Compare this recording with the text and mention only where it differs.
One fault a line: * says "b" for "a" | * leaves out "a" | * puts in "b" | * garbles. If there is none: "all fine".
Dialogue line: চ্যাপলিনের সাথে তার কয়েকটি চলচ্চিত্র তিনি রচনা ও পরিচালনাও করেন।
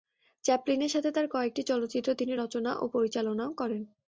all fine